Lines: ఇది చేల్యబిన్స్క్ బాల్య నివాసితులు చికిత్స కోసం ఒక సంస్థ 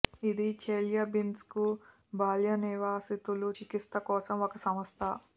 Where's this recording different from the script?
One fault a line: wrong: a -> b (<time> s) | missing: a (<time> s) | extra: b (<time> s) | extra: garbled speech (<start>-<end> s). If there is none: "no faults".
no faults